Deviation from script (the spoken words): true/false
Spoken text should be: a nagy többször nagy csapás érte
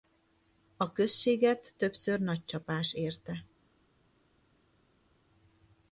true